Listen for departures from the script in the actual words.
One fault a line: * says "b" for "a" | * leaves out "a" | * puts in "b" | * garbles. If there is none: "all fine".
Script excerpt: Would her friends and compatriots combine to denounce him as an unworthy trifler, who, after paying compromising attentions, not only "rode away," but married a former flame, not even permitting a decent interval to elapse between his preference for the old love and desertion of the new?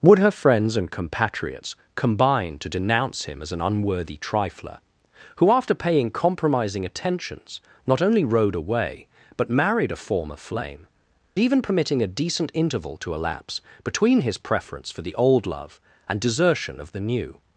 * leaves out "not"